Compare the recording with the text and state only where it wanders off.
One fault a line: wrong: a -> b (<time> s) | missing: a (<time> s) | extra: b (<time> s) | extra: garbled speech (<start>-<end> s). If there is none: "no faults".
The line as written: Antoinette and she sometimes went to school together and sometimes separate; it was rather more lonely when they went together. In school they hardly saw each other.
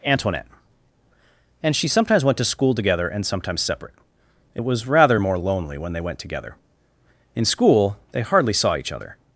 no faults